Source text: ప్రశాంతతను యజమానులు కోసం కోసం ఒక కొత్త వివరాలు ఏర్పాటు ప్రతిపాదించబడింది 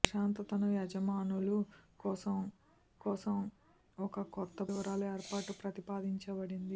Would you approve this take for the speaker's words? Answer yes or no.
yes